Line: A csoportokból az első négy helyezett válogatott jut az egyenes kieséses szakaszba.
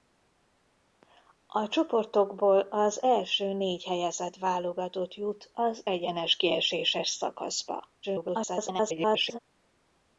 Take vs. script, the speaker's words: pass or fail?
fail